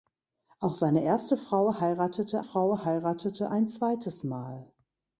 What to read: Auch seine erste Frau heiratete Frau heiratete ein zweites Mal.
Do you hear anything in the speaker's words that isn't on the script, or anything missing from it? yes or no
no